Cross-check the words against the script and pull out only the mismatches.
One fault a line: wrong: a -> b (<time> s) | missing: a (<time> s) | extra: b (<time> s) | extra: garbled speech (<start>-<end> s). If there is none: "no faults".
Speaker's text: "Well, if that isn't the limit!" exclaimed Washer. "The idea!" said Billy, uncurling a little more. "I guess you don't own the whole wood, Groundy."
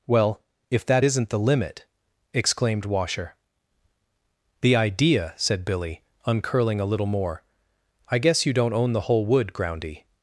no faults